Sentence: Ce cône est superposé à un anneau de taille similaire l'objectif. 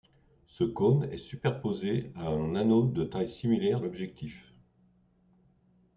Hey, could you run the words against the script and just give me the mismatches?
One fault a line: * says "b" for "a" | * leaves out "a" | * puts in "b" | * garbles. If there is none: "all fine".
all fine